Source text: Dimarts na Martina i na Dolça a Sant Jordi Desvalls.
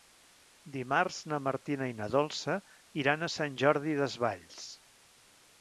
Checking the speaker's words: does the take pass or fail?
fail